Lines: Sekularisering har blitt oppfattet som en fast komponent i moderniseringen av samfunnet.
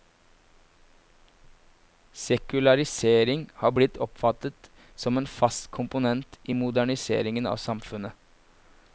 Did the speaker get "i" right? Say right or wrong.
right